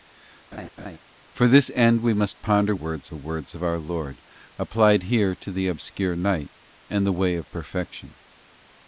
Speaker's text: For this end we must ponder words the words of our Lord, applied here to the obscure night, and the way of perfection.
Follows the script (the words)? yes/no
yes